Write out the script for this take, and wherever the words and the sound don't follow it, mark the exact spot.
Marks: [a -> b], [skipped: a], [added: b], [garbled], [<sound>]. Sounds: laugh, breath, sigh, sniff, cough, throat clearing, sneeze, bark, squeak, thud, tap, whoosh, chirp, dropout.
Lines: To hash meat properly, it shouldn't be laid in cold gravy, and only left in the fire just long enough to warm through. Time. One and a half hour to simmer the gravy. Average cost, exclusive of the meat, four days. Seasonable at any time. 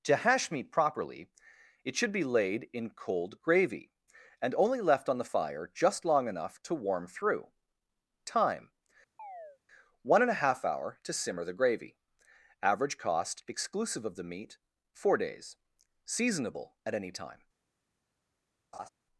To hash meat properly, it [shouldn't -> should] be laid in cold gravy, and only left [in -> on] the fire just long enough to warm through. Time. [chirp] One and a half hour to simmer the gravy. Average cost, exclusive of the meat, four days. Seasonable at any time. [laugh]